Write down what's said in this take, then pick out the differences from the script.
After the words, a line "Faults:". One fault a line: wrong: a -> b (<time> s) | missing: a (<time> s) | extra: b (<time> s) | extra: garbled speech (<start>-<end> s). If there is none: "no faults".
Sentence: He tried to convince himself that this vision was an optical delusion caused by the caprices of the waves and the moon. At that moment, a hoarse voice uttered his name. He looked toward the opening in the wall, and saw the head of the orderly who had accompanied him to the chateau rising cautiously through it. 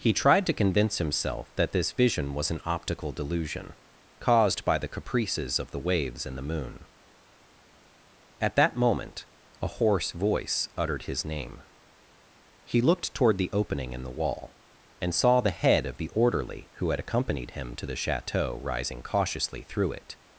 He tried to convince himself that this vision was an optical delusion caused by the caprices of the waves and the moon. At that moment, a hoarse voice uttered his name. He looked toward the opening in the wall, and saw the head of the orderly who had accompanied him to the chateau rising cautiously through it.
Faults:
no faults